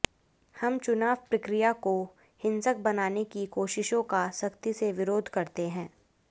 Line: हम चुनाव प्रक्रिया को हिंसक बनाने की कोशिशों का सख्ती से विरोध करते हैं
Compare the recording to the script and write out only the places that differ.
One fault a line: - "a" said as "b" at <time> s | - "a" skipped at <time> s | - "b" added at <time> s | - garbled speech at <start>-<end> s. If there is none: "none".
none